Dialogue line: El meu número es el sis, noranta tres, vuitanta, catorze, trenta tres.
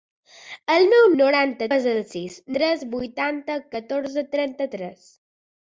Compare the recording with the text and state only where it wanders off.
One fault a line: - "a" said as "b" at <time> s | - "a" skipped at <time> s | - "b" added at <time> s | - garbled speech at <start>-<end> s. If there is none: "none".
- "número" said as "noranta" at 1.2 s
- "noranta" skipped at 2.4 s